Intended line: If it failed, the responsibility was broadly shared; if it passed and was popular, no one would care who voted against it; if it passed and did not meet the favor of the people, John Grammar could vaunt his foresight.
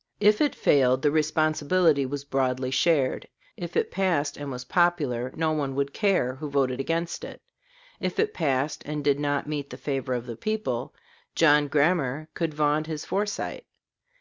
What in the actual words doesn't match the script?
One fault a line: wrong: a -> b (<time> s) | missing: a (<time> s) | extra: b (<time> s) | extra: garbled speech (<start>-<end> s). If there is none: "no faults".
no faults